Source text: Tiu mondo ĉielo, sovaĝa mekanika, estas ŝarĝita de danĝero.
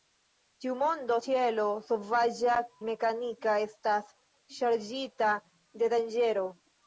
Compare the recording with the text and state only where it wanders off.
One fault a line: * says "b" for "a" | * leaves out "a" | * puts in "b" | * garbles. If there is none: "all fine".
all fine